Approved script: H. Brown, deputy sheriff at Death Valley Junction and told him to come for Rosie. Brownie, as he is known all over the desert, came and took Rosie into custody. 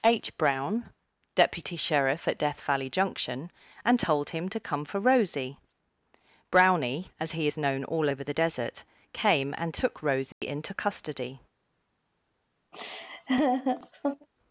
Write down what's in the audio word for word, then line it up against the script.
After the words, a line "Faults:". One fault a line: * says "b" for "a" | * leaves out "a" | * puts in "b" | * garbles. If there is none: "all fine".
H. Brown, deputy sheriff at Death Valley Junction and told him to come for Rosie. Brownie, as he is known all over the desert, came and took Rosie into custody.
Faults:
all fine